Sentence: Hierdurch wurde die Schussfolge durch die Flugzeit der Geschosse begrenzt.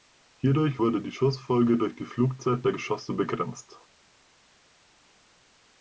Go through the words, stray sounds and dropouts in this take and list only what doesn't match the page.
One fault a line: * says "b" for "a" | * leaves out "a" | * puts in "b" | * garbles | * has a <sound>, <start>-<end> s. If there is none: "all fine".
all fine